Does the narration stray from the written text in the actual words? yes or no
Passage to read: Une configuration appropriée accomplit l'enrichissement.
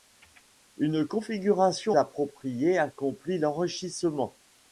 no